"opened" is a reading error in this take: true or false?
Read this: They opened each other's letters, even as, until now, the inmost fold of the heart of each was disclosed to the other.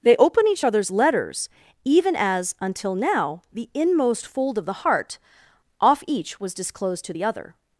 true